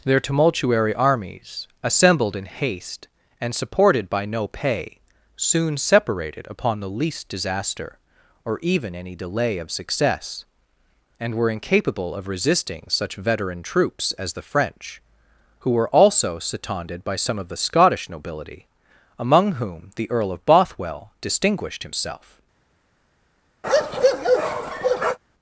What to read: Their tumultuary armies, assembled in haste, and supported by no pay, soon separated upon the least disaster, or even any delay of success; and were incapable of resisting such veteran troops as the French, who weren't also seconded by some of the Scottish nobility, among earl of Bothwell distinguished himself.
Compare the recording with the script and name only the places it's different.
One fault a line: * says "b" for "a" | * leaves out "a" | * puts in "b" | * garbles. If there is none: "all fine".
* says "were" for "weren't"
* puts in "whom the"